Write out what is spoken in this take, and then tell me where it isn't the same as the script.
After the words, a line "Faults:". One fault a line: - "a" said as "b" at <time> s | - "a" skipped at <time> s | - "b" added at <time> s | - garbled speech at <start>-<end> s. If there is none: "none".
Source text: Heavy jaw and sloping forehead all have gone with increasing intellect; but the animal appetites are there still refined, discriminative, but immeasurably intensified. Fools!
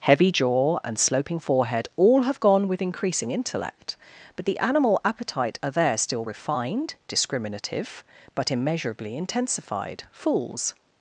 Heavy jaw and sloping forehead all have gone with increasing intellect; but the animal appetite are there still refined, discriminative, but immeasurably intensified. Fools!
Faults:
- "appetites" said as "appetite" at 5.0 s